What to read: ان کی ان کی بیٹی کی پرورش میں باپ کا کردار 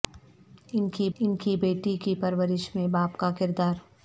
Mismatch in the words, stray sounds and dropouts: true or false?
false